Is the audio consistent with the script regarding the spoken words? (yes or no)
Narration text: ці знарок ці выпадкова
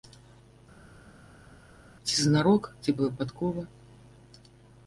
yes